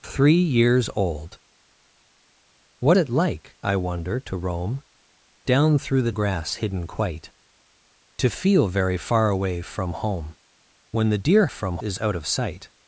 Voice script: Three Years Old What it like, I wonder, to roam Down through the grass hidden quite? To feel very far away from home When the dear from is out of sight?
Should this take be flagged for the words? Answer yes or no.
no